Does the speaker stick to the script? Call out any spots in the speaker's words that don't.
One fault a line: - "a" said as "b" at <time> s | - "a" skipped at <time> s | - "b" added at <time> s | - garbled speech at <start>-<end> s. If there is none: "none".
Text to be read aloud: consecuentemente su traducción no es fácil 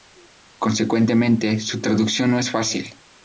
none